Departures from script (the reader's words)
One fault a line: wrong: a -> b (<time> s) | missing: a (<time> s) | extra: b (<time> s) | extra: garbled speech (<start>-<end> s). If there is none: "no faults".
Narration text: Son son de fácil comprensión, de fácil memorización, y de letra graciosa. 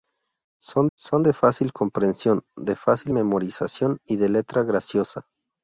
no faults